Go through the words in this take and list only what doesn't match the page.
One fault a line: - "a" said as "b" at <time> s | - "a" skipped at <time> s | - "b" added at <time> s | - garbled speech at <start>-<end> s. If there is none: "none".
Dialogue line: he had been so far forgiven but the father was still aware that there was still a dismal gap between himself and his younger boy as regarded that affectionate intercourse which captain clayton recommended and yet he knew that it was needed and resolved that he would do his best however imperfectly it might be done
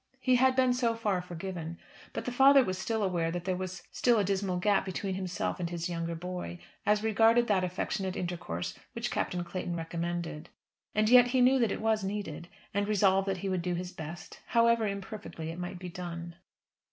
none